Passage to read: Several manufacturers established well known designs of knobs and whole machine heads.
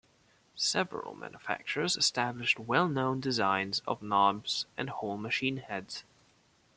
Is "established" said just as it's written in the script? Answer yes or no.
yes